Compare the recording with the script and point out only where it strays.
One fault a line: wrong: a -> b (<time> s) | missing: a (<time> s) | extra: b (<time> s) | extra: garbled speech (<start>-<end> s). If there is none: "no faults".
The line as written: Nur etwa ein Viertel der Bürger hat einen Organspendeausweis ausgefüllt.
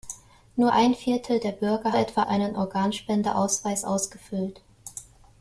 missing: etwa (0.7 s)
wrong: hat -> etwa (2.0 s)